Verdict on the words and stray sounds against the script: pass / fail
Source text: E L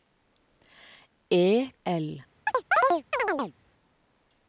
fail